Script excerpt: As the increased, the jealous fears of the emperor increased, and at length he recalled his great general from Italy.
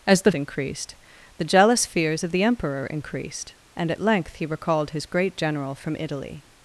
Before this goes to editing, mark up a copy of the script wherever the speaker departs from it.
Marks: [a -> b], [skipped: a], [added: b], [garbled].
As the increased, the jealous fears of the emperor increased, and at length he recalled his great general from Italy.